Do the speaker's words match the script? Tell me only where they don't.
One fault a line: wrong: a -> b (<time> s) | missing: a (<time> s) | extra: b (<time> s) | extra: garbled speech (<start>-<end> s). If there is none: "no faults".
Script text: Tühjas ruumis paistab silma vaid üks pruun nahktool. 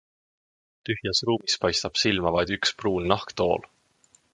no faults